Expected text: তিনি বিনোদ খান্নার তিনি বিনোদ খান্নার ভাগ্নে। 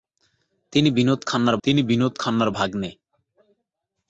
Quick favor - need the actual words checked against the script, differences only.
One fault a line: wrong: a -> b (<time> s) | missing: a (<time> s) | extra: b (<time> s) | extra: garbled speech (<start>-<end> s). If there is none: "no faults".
no faults